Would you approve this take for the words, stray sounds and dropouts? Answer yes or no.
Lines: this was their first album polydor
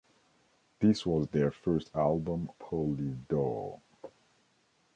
yes